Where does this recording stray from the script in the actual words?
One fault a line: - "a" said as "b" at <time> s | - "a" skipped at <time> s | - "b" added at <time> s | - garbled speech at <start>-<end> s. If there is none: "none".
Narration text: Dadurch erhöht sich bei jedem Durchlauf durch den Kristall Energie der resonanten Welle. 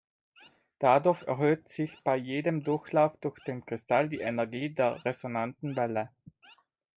- "die" added at 4.1 s